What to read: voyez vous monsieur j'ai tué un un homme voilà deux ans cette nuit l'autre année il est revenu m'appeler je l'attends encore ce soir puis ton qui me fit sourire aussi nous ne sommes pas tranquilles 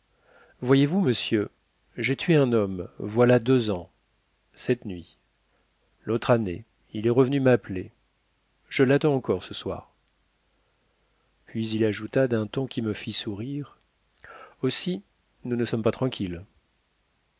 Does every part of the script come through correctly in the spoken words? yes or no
no